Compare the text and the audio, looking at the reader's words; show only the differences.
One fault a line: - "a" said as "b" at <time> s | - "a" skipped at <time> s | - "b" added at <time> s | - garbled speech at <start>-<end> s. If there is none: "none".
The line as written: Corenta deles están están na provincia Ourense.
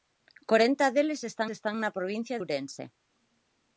none